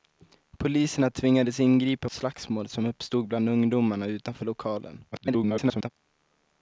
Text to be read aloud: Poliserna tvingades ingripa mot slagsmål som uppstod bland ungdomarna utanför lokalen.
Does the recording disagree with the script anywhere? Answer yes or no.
yes